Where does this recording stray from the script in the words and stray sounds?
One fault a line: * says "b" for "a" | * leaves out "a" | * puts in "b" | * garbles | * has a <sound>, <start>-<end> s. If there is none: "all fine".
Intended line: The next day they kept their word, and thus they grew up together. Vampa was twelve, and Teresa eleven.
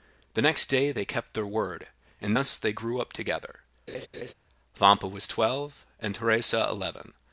* has a laugh, 3.9-4.3 s